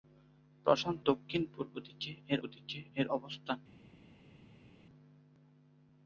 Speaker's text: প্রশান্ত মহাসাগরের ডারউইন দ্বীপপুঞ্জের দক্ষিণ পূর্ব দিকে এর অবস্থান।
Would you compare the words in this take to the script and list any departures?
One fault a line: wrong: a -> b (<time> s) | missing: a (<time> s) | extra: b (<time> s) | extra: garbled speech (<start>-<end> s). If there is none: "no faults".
wrong: মহাসাগরের ডারউইন দ্বীপপুঞ্জের দক্ষিণ পূর্ব -> দক্ষিণ পূর্ব দিকে এর (1.0 s)